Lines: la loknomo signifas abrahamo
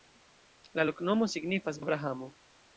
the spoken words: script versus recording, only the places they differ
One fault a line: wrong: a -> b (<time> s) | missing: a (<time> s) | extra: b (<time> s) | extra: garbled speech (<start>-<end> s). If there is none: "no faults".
no faults